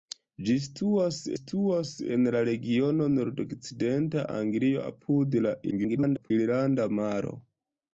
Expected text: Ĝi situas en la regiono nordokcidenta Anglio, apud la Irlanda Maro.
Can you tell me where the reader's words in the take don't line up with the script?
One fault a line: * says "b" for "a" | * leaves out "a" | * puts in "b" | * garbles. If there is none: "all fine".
* puts in "situas"
* garbles